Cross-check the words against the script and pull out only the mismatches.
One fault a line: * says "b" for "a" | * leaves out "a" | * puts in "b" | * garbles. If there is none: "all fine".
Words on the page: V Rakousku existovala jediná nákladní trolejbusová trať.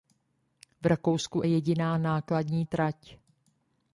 * leaves out "existovala"
* leaves out "trolejbusová"